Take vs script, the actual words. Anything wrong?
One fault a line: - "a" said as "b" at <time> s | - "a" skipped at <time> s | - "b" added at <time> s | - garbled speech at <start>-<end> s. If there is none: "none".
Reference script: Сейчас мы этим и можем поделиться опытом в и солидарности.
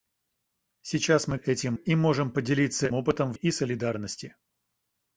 none